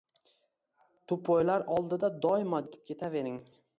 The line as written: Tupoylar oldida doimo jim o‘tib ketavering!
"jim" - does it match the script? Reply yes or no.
no